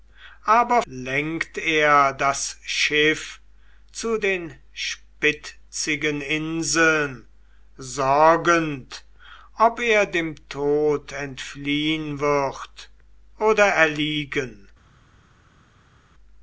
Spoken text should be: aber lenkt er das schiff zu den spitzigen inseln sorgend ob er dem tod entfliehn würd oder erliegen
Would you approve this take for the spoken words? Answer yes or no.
yes